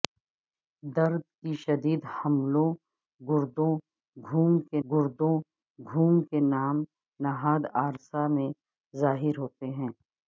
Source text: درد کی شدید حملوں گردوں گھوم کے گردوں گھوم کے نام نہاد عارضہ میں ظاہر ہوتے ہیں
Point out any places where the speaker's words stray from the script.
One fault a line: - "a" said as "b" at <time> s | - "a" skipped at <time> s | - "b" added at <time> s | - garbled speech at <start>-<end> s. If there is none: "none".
none